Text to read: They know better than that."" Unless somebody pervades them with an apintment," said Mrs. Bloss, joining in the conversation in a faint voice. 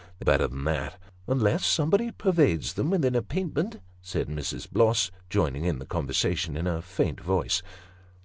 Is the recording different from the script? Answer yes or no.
yes